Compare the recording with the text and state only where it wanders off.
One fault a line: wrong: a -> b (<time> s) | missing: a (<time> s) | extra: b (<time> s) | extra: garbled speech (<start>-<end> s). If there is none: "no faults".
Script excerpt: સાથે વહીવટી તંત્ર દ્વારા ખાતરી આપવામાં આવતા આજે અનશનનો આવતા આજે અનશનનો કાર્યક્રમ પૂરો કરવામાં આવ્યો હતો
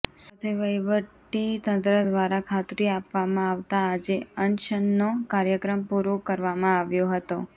missing: આવતા આજે અનશનનો (5.1 s)